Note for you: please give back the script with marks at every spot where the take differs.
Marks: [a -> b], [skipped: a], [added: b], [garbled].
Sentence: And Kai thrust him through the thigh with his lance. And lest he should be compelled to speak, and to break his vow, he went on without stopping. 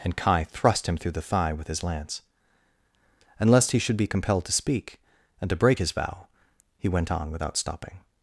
And Kai thrust him through the thigh with his lance. And lest he should be compelled to speak, and to break his vow, he went on without stopping.